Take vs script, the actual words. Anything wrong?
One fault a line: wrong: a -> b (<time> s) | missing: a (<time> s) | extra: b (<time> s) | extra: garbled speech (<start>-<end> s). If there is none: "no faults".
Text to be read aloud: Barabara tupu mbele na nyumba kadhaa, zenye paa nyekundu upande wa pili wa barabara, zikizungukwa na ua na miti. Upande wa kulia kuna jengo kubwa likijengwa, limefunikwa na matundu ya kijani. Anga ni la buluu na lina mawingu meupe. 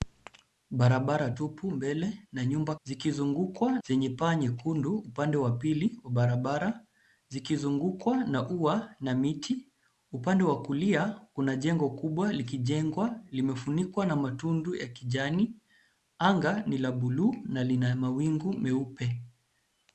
wrong: kadhaa -> zikizungukwa (2.8 s)